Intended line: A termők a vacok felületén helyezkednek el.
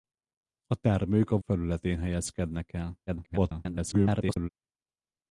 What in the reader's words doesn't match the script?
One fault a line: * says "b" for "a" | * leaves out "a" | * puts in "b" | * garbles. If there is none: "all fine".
* leaves out "vacok"
* garbles